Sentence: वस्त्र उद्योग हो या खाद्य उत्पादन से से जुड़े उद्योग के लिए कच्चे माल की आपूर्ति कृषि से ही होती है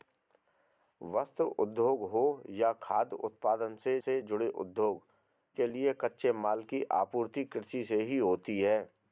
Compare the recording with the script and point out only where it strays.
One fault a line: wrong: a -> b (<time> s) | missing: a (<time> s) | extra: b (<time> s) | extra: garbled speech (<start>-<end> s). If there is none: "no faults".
no faults